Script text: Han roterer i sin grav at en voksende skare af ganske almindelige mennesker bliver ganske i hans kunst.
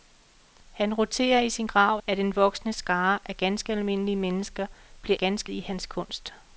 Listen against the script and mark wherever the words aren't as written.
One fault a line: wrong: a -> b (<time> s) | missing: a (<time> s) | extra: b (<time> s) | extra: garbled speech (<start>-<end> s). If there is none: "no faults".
no faults